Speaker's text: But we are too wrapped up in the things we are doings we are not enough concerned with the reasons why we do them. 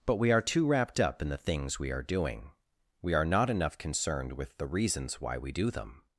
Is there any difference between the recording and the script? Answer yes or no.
yes